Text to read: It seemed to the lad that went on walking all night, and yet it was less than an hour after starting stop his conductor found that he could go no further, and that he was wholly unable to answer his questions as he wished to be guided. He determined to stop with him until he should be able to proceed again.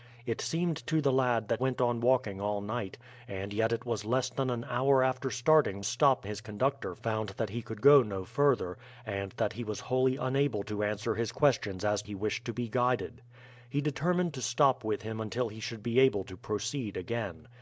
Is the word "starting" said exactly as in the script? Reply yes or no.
yes